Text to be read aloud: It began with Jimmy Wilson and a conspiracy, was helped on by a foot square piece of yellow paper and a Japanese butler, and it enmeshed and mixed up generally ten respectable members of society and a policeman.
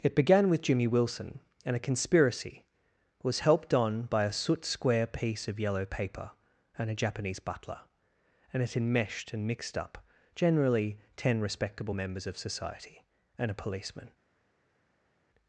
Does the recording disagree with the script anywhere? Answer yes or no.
yes